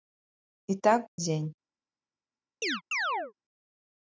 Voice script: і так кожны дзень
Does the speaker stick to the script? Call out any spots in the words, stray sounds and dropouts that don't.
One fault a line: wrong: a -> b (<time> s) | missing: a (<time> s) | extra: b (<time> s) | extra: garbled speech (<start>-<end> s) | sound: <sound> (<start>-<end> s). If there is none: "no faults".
missing: кожны (1.1 s)
sound: chirp (2.6-3.3 s)